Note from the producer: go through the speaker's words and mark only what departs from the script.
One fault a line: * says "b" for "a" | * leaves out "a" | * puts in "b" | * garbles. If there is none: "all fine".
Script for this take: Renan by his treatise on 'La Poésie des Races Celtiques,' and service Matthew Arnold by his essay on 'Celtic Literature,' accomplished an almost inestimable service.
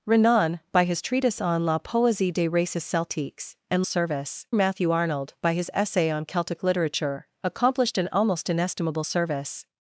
all fine